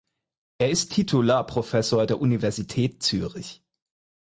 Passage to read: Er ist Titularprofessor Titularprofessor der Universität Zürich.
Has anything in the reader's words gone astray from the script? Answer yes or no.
yes